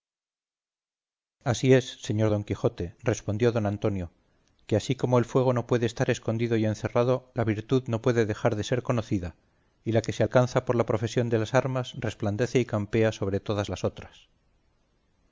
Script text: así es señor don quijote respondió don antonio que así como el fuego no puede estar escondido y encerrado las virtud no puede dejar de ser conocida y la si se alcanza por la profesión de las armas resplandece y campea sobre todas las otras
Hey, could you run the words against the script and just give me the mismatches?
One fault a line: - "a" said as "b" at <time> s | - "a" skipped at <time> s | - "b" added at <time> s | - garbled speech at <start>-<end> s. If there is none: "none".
- "las" said as "la" at 7.3 s
- "si" said as "que" at 10.0 s